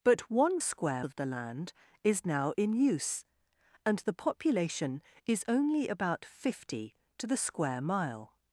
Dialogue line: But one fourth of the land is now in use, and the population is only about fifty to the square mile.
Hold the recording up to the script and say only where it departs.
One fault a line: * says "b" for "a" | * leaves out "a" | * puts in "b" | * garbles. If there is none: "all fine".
* says "square" for "fourth"